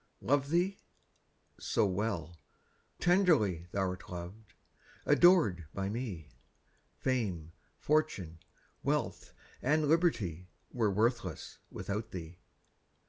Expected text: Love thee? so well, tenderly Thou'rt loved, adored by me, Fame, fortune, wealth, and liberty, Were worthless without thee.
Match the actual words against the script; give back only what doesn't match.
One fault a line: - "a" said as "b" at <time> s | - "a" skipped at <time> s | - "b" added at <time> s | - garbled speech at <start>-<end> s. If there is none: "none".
none